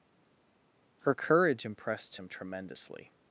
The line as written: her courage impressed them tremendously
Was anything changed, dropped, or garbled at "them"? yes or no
yes